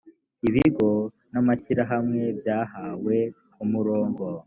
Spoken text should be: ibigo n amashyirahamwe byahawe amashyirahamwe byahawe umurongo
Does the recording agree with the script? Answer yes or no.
no